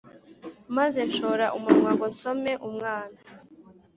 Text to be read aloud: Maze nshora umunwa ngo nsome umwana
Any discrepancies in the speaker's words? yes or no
no